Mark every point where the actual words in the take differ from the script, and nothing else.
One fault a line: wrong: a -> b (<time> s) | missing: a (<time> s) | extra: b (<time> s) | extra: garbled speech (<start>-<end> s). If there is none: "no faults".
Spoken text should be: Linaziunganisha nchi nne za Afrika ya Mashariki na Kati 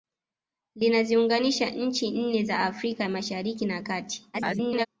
extra: garbled speech (4.3-4.9 s)